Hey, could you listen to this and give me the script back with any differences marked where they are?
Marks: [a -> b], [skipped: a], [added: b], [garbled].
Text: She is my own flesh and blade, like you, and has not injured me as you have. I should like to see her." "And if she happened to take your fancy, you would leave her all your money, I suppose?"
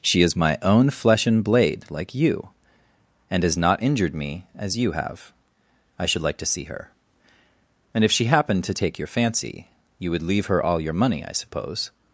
She is my own flesh and blade, like you, and has not injured me as you have. I should like to see her." "And if she happened to take your fancy, you would leave her all your money, I suppose?"